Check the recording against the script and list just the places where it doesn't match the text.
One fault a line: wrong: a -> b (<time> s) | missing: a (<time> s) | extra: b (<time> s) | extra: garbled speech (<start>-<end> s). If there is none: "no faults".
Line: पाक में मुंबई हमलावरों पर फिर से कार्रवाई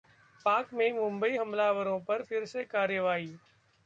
no faults